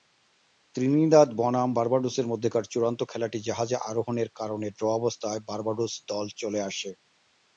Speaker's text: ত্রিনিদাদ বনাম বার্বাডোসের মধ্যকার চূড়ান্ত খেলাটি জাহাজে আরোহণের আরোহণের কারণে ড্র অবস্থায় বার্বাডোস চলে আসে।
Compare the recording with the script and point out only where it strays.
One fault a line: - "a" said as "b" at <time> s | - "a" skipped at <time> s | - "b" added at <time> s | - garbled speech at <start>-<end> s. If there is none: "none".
- "আরোহণের" skipped at 4.3 s
- "দল" added at 6.1 s